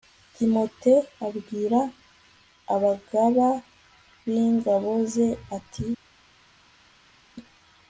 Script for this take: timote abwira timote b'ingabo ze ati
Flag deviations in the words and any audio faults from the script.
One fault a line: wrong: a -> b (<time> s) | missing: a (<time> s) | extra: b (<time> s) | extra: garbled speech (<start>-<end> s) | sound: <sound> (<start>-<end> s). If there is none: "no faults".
wrong: timote -> abagaba (2.7 s)